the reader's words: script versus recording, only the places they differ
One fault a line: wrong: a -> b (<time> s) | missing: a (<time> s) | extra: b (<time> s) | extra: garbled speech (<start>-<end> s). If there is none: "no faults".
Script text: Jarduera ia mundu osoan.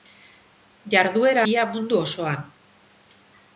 no faults